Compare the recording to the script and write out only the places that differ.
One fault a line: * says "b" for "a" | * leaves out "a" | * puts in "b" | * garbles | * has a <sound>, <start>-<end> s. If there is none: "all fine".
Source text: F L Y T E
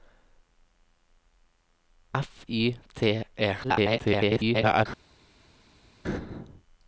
* leaves out "L"
* garbles